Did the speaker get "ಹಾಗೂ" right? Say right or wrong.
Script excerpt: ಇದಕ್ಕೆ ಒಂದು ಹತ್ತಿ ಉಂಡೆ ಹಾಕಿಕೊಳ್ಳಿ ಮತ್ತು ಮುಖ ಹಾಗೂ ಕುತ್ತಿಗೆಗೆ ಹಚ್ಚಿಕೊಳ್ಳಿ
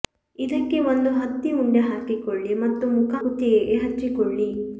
wrong